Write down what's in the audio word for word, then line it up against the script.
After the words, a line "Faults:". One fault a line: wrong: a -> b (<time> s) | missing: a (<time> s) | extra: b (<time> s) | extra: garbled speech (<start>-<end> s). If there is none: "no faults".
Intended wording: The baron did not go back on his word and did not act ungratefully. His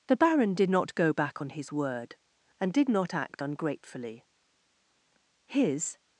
The baron did not go back on his word and did not act ungratefully. His
Faults:
no faults